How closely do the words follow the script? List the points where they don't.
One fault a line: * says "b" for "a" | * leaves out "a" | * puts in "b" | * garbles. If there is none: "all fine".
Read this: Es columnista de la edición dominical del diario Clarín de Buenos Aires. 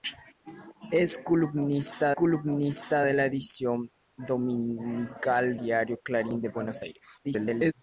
* puts in "columnista"
* leaves out "del"
* garbles